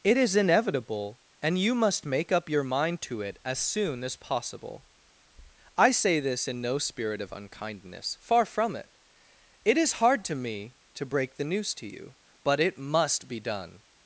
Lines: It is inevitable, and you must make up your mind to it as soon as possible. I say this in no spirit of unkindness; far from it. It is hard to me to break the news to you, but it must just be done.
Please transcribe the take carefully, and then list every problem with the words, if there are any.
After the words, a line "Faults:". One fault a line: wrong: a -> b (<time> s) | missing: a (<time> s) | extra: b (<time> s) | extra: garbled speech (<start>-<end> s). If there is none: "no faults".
It is inevitable, and you must make up your mind to it as soon as possible. I say this in no spirit of unkindness; far from it. It is hard to me to break the news to you, but it must be done.
Faults:
missing: just (13.3 s)